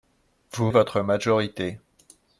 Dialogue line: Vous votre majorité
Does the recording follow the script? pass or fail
pass